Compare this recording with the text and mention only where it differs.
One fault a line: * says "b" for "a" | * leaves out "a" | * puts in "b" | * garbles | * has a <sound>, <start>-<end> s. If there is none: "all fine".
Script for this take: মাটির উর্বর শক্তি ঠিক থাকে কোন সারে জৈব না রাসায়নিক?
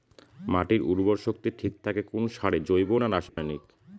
* has a dropout, 3.3-3.4 s